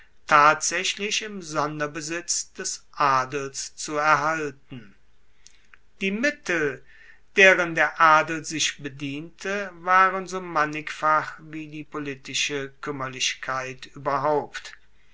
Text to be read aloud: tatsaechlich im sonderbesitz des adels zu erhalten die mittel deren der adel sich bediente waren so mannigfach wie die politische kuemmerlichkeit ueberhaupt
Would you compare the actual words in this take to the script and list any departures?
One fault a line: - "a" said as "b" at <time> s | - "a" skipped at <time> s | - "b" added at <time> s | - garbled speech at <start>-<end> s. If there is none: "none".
none